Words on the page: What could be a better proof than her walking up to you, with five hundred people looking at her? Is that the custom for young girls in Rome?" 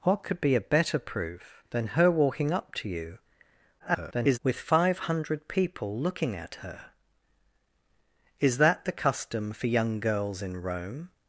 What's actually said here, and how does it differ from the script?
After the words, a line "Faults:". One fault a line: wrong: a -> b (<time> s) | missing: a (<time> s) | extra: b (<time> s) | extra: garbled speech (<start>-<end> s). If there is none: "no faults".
What could be a better proof than her walking up to you, [garbled] with five hundred people looking at her? Is that the custom for young girls in Rome?"
Faults:
extra: garbled speech (3.8-4.4 s)